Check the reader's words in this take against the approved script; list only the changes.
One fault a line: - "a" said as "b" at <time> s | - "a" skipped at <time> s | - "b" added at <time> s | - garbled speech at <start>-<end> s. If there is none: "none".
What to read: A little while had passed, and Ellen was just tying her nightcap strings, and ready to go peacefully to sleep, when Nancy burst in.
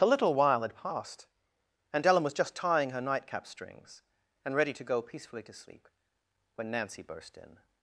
none